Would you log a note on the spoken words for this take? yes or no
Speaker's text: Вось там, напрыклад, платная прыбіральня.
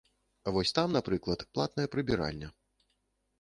no